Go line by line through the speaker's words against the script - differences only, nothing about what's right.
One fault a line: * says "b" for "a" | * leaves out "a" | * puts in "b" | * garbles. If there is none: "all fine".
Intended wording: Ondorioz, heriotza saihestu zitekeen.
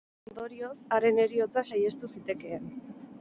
* puts in "haren"